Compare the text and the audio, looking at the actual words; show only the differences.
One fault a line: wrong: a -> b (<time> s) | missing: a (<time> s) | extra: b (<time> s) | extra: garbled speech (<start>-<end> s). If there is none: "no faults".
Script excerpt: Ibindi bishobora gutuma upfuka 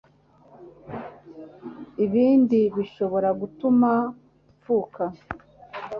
no faults